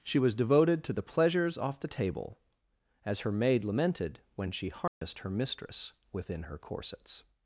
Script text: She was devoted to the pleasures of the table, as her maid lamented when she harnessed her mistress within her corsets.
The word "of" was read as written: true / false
false